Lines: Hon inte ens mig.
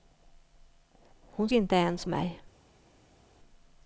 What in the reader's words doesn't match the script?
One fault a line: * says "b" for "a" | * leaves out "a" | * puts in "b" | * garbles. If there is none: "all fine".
all fine